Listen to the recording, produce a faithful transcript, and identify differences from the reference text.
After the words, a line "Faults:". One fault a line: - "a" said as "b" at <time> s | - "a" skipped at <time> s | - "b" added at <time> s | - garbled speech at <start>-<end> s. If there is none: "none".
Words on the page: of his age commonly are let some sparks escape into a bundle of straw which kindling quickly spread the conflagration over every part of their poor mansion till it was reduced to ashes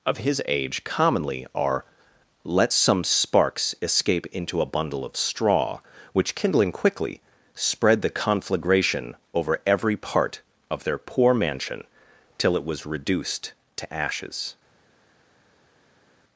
of his age commonly are let some sparks escape into a bundle of straw which kindling quickly spread the conflagration over every part of their poor mansion till it was reduced to ashes
Faults:
none